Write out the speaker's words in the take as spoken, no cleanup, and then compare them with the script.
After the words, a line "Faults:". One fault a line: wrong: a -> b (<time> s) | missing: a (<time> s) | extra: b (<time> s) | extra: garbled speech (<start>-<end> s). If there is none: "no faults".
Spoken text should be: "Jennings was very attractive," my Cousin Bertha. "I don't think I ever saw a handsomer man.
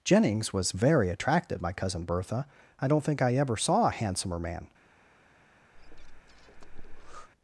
"Jennings was very attractive," my Cousin Bertha. "I don't think I ever saw a handsomer man.
Faults:
no faults